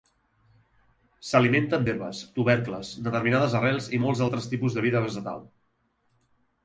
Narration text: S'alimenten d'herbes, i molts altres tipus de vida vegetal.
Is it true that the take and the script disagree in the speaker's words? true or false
true